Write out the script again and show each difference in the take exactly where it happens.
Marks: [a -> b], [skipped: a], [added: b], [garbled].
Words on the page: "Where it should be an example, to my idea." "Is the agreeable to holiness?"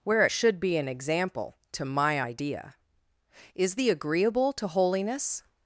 "Where it should be an example, to my idea." "Is the agreeable to holiness?"